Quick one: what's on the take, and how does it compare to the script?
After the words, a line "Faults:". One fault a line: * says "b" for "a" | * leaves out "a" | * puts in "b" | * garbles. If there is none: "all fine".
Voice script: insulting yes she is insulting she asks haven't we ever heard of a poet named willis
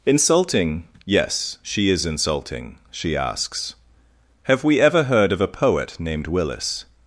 insulting yes she is insulting she asks have we ever heard of a poet named willis
Faults:
* says "have" for "haven't"